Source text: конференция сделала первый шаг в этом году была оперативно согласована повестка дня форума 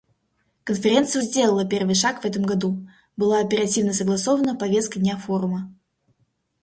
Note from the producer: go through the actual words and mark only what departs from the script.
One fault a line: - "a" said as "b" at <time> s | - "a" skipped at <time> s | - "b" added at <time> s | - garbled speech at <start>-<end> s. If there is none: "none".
none